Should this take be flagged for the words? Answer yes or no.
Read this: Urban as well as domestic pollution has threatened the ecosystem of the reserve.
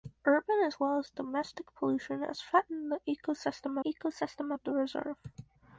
yes